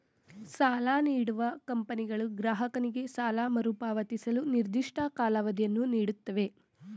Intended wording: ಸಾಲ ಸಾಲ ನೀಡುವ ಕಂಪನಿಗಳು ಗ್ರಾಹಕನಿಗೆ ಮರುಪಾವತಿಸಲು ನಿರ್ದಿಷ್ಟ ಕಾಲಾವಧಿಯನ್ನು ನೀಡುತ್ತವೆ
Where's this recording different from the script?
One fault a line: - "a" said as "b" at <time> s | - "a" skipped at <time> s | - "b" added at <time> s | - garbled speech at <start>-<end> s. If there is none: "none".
- "ಸಾಲ" skipped at 0.9 s
- "ಸಾಲ" added at 3.1 s